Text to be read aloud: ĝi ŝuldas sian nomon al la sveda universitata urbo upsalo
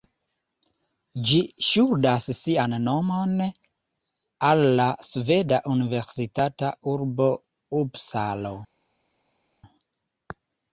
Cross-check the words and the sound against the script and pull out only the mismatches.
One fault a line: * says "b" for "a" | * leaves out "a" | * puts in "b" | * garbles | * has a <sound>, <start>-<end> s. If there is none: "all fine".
all fine